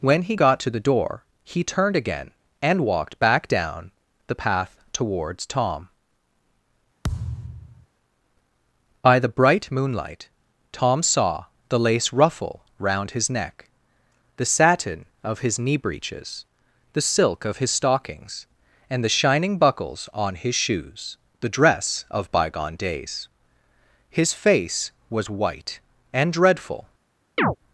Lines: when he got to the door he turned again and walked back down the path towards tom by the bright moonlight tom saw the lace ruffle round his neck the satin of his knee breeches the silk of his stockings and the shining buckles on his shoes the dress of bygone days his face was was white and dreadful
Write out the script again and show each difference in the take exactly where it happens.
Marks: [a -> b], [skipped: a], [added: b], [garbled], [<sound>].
when he got to the door he turned again and walked back down the path towards tom [thud] by the bright moonlight tom saw the lace ruffle round his neck the satin of his knee breeches the silk of his stockings and the shining buckles on his shoes the dress of bygone days his face was [skipped: was] white and dreadful [chirp]